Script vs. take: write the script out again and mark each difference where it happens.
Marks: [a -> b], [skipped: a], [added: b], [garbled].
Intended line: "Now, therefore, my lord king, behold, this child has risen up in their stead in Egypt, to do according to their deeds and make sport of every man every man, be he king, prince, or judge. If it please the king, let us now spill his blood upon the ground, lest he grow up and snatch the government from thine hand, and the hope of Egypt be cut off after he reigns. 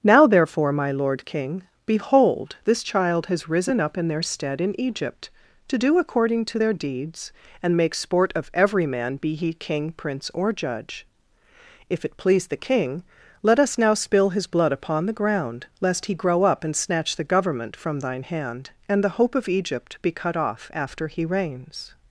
"Now, therefore, my lord king, behold, this child has risen up in their stead in Egypt, to do according to their deeds and make sport of every man [skipped: every man,] be he king, prince, or judge. If it please the king, let us now spill his blood upon the ground, lest he grow up and snatch the government from thine hand, and the hope of Egypt be cut off after he reigns.